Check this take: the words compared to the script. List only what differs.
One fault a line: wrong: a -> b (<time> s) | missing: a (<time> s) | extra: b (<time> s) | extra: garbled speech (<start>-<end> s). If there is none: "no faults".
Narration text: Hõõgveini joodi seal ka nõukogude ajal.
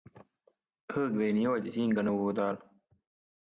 wrong: seal -> siin (1.8 s)